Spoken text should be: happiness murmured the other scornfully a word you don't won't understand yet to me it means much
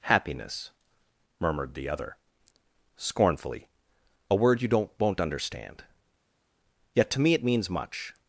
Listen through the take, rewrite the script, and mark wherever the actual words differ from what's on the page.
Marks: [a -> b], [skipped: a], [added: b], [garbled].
happiness murmured the other scornfully a word you don't won't understand yet to me it means much